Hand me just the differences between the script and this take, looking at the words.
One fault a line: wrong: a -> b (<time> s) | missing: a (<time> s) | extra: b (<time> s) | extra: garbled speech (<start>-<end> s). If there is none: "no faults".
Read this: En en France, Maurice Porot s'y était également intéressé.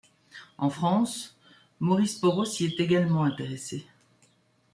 missing: en (0.7 s)
wrong: était -> est (2.6 s)